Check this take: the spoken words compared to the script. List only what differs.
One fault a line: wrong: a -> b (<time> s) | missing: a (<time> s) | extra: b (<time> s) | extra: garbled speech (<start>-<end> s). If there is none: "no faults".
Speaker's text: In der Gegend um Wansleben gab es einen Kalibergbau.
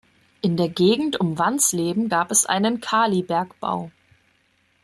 no faults